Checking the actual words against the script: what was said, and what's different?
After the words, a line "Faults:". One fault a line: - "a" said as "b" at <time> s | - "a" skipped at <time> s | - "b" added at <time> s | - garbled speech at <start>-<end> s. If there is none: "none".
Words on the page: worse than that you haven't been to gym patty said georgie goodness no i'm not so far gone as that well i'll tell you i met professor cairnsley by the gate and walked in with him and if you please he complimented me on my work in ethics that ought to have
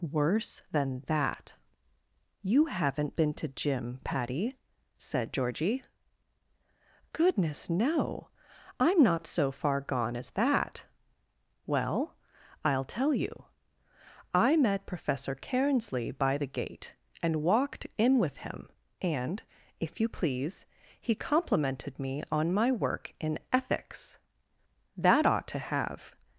worse than that you haven't been to gym patty said georgie goodness no i'm not so far gone as that well i'll tell you i met professor cairnsley by the gate and walked in with him and if you please he complimented me on my work in ethics that ought to have
Faults:
none